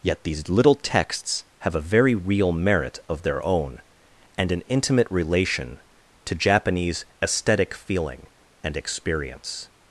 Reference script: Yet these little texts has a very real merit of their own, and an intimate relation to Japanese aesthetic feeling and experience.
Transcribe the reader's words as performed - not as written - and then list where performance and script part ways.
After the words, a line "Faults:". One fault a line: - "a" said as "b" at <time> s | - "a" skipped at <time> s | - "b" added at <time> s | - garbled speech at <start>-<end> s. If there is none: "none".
Yet these little texts have a very real merit of their own, and an intimate relation to Japanese aesthetic feeling and experience.
Faults:
- "has" said as "have" at 1.6 s